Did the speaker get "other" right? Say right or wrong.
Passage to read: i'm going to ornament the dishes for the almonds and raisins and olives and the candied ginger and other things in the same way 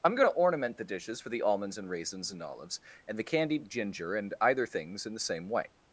wrong